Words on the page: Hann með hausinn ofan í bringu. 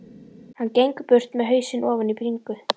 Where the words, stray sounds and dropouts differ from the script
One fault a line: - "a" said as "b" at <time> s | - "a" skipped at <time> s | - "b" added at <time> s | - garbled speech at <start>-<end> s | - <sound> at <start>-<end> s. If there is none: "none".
- "gengur burt" added at 0.8 s